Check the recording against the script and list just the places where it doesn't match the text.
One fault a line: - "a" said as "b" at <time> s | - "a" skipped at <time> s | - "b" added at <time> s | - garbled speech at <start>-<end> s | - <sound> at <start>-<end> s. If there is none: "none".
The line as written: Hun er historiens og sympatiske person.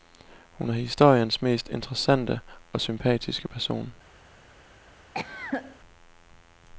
- "mest interessante" added at 1.4 s
- cough at 5.1-5.8 s